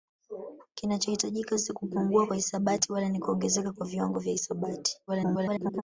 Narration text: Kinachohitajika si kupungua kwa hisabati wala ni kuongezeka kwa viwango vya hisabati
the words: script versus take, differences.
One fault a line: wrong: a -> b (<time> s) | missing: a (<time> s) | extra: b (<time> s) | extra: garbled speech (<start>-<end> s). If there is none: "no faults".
extra: garbled speech (5.1-5.8 s)